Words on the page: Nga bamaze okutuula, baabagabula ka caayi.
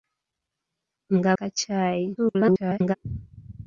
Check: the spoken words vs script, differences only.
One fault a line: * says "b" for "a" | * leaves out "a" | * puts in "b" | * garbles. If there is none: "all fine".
* leaves out "bamaze okutuula baabagabula"
* garbles